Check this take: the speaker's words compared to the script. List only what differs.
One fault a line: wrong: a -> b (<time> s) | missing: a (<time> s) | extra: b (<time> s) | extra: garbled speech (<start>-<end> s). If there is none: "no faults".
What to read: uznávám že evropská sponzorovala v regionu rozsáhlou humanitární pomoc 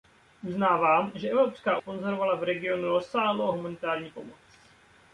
no faults